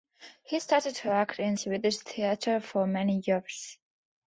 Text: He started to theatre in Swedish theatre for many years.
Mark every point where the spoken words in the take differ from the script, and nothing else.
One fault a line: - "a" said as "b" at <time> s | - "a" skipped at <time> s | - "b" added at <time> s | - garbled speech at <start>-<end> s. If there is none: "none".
- "theatre" said as "act" at 1.1 s